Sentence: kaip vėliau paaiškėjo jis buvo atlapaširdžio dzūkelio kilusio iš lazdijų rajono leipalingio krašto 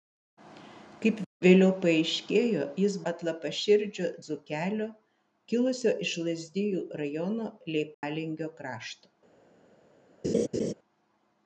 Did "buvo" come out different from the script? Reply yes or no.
yes